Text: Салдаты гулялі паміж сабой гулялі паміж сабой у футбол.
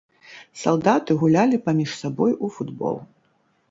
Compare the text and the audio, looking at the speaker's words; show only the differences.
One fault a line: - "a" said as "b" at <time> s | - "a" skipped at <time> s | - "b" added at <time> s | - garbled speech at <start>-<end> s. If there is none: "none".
- "гулялі паміж сабой" skipped at 2.4 s